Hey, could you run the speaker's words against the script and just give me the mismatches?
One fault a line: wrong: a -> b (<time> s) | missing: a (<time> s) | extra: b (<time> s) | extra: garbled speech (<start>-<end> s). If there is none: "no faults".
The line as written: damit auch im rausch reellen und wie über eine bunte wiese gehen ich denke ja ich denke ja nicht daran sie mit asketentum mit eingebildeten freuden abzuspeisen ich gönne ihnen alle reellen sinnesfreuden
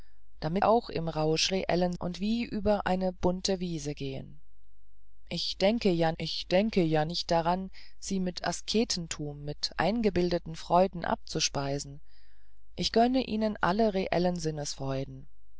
no faults